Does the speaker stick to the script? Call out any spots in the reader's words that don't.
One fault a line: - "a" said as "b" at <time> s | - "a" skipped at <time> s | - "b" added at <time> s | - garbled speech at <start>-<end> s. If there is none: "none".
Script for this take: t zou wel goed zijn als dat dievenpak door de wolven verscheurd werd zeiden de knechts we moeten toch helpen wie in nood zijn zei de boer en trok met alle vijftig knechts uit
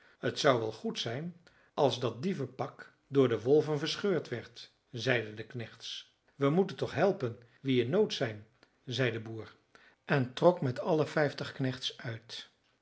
none